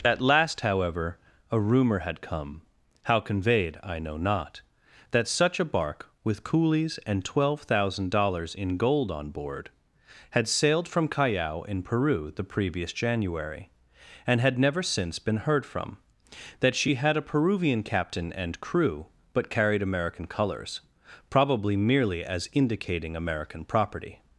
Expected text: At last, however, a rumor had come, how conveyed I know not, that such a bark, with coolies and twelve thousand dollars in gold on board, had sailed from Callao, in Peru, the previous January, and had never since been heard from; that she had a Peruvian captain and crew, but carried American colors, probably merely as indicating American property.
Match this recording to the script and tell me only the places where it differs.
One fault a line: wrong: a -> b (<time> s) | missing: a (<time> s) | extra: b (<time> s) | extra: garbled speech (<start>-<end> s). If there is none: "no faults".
no faults